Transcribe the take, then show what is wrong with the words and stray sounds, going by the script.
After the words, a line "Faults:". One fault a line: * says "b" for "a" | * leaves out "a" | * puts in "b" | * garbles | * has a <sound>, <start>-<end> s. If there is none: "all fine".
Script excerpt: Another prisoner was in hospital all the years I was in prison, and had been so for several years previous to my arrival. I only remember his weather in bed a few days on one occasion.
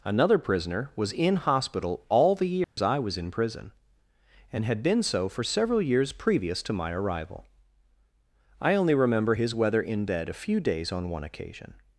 Another prisoner was in hospital all the years I was in prison, and had been so for several years previous to my arrival. I only remember his weather in bed a few days on one occasion.
Faults:
* has a dropout, 2.6-2.8 s